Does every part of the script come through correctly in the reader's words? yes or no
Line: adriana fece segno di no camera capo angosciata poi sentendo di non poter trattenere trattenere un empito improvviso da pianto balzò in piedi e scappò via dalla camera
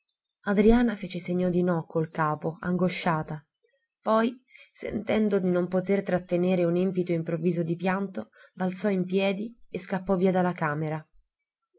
no